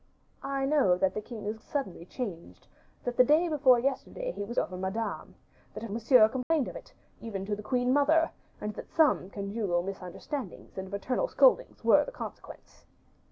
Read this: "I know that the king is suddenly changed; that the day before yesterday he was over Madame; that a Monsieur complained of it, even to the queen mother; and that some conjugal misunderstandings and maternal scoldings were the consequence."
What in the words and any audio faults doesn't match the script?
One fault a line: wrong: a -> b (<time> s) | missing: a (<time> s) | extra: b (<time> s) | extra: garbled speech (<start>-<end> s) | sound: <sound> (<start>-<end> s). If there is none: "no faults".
sound: dropout (6.4-6.5 s)